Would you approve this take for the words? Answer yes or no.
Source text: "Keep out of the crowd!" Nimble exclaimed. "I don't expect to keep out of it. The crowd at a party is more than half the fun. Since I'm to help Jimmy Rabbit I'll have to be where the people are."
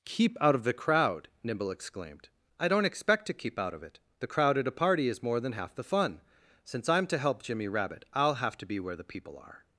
yes